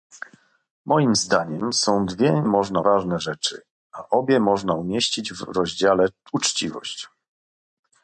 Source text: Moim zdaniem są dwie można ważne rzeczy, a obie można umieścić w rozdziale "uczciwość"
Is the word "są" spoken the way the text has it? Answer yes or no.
yes